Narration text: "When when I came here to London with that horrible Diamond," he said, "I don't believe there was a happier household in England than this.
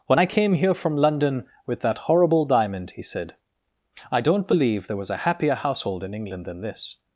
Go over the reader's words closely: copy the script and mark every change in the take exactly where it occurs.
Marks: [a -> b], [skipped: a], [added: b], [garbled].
"When [skipped: when] I came here [to -> from] London with that horrible Diamond," he said, "I don't believe there was a happier household in England than this.